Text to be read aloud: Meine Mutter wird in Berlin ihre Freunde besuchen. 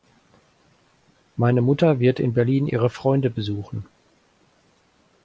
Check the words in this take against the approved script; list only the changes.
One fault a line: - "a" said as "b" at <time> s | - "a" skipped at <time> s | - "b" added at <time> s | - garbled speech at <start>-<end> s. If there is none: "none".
none